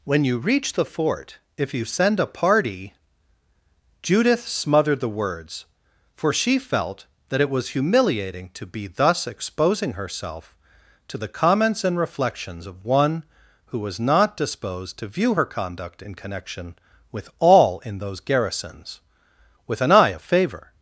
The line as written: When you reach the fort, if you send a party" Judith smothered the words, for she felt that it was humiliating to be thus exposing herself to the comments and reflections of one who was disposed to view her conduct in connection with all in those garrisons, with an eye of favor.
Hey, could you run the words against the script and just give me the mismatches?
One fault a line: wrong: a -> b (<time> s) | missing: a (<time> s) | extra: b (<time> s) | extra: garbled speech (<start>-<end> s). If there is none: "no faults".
extra: not (14.0 s)